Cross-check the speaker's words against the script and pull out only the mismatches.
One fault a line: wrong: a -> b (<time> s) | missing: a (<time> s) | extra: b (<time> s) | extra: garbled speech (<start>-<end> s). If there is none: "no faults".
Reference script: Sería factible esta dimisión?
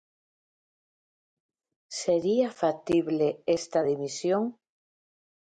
no faults